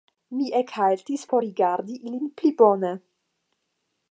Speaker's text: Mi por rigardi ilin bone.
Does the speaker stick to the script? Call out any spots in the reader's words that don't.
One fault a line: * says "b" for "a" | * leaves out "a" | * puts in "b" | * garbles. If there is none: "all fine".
* puts in "ekhaltis"
* puts in "pli"